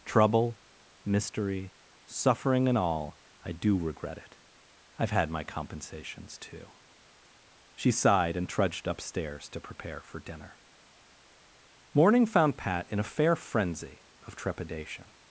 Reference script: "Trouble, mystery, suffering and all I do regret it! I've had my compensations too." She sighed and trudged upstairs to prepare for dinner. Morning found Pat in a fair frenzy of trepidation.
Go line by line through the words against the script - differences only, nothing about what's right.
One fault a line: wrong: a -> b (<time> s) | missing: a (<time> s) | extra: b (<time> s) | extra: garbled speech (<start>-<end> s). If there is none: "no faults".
no faults